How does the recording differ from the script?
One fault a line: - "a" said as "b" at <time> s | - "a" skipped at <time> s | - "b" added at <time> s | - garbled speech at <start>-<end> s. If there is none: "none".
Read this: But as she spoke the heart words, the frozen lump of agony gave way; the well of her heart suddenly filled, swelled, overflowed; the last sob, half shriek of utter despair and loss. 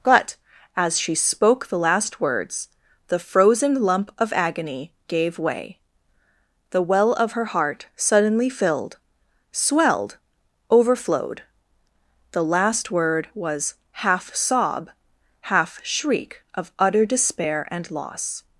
- "heart" said as "last" at 1.8 s
- "word was half" added at 12.9 s